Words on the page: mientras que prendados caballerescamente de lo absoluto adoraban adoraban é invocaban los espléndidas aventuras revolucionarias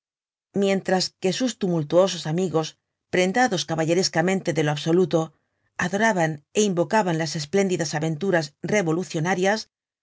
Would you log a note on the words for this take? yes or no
yes